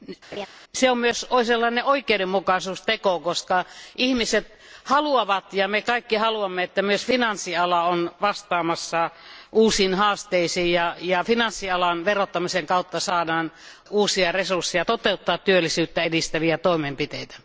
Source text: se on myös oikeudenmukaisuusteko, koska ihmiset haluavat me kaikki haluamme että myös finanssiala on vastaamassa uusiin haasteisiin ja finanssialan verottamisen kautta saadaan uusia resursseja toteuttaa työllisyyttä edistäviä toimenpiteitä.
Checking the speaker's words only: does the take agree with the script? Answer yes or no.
no